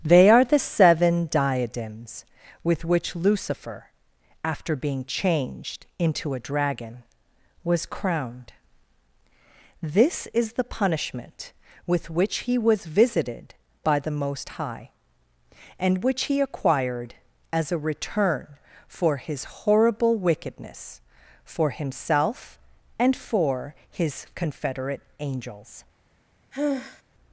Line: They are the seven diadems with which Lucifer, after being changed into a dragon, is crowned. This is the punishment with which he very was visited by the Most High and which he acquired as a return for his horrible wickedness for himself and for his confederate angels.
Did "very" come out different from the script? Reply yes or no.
yes